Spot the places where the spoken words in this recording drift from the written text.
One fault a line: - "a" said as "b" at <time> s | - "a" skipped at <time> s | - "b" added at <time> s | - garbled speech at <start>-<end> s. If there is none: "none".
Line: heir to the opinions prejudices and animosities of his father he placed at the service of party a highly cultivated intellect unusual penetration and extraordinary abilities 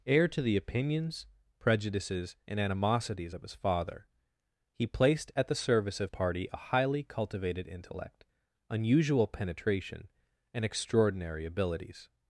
none